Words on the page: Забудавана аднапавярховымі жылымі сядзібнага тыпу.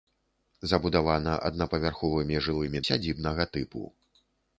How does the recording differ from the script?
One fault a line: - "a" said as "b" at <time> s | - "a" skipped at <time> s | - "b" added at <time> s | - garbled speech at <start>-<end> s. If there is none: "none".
none